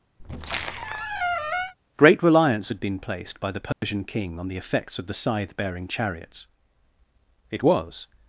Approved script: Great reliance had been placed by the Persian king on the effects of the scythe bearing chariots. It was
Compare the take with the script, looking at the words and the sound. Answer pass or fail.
fail